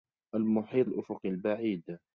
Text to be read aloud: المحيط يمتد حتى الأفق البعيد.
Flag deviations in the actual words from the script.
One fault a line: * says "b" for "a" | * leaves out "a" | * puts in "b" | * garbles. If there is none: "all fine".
* leaves out "يمتد حتى"